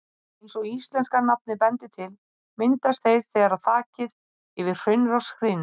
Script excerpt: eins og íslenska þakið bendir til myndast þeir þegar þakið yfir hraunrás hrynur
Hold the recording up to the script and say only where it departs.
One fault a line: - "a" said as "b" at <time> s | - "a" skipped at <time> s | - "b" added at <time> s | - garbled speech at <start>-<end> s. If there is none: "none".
- "þakið" said as "nafnið" at 1.2 s